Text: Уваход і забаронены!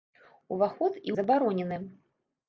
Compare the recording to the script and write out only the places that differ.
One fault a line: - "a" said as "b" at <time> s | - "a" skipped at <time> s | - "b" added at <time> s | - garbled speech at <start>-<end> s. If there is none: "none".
none